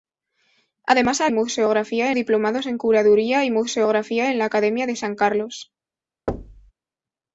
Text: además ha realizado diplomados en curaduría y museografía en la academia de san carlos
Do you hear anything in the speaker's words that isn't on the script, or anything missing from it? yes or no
yes